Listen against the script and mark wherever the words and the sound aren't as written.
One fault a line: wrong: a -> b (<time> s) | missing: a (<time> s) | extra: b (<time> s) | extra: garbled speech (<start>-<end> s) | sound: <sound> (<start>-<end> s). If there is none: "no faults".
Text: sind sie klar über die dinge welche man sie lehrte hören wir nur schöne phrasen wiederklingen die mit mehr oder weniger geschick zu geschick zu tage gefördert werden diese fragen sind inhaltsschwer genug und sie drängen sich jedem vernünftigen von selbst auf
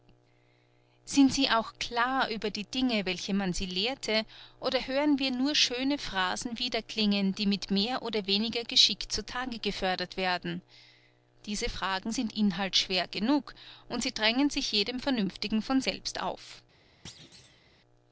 extra: auch (1.5 s)
extra: oder (4.6 s)
missing: geschick zu (9.3 s)
sound: thud (17.0-17.6 s)